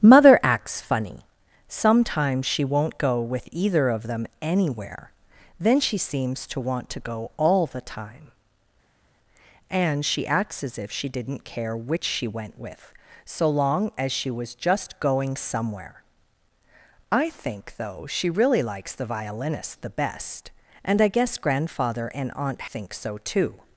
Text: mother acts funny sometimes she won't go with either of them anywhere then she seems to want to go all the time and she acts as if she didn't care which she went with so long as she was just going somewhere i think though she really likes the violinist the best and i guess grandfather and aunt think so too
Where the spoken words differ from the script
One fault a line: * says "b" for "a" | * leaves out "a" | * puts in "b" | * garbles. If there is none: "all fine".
all fine